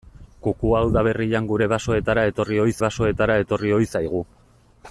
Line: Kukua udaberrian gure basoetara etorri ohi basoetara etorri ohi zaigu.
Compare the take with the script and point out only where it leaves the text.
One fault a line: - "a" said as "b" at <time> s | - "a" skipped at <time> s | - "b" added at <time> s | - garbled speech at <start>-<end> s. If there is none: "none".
none